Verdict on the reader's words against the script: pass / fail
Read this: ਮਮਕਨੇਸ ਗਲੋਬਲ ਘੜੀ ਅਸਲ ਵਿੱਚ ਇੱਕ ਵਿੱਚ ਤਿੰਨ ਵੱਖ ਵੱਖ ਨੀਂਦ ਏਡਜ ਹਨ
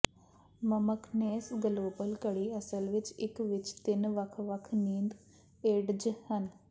pass